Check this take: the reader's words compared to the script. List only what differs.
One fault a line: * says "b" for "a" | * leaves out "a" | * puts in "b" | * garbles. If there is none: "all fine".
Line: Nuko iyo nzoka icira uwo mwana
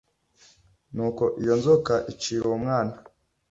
all fine